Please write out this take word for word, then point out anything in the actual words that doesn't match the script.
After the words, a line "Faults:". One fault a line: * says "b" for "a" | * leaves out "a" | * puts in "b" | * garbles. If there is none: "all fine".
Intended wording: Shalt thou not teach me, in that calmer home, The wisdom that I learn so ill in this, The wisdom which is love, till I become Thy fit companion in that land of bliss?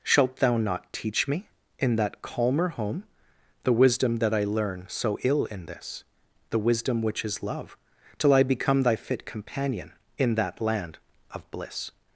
Shalt thou not teach me, in that calmer home, The wisdom that I learn so ill in this, The wisdom which is love, till I become Thy fit companion in that land of bliss?
Faults:
all fine